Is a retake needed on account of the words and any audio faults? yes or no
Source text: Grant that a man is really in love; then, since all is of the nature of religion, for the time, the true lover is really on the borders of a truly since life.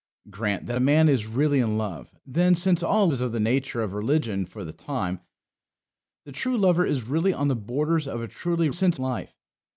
no